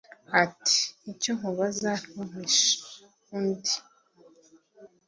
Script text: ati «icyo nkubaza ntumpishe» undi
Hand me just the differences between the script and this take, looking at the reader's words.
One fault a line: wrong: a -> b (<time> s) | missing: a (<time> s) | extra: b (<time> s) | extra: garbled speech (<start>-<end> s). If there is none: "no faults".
no faults